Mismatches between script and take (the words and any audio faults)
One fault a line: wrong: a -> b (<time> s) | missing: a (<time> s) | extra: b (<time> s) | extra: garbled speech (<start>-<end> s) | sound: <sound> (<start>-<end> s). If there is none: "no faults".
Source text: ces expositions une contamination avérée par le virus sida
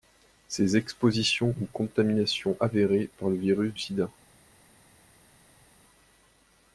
no faults